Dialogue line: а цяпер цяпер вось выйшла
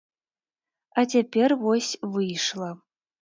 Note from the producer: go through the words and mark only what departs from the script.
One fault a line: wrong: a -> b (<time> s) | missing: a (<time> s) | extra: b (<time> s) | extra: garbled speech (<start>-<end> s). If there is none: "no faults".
missing: цяпер (1.5 s)